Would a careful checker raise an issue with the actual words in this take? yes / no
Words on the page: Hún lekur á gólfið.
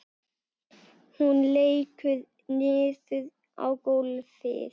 yes